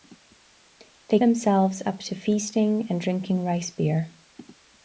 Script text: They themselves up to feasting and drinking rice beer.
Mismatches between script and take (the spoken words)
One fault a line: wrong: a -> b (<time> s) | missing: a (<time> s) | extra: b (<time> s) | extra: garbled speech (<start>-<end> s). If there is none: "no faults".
no faults